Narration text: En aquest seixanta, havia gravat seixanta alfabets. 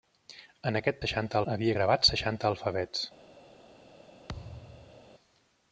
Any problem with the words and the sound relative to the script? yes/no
yes